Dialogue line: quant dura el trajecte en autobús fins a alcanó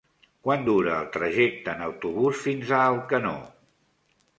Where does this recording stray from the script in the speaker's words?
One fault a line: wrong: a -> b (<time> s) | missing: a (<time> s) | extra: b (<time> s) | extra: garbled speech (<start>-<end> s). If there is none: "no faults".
no faults